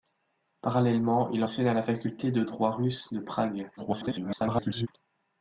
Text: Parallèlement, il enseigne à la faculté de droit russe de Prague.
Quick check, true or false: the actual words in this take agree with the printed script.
false